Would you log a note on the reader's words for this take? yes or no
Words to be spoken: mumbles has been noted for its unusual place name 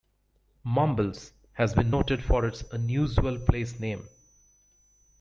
no